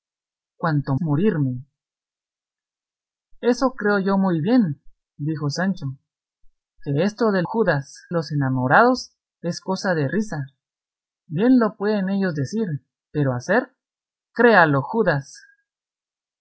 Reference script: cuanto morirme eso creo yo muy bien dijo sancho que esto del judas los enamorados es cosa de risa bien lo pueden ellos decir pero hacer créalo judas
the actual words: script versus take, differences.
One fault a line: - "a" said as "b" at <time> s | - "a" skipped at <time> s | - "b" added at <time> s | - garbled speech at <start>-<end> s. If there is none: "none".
none